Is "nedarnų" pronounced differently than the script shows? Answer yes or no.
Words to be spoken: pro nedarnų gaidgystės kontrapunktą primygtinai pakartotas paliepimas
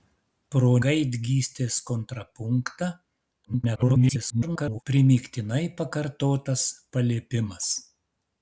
yes